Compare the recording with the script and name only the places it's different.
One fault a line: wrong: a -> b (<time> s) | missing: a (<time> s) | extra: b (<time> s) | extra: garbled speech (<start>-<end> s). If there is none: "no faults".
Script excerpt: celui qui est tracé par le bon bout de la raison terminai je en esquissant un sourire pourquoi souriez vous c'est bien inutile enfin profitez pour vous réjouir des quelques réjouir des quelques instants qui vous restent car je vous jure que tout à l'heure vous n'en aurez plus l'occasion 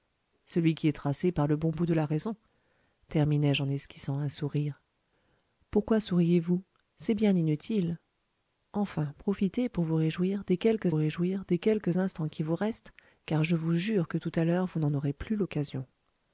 no faults